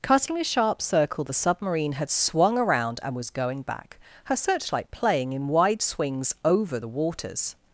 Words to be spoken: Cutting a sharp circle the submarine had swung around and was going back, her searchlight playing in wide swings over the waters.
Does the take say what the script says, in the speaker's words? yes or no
yes